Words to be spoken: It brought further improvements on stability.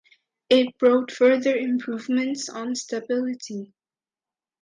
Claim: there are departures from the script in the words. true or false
false